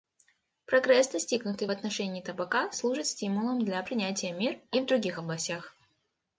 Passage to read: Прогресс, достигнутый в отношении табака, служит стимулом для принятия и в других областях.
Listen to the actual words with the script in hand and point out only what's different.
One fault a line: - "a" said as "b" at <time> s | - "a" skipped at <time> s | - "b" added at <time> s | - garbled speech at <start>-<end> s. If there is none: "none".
- "мер" added at 4.3 s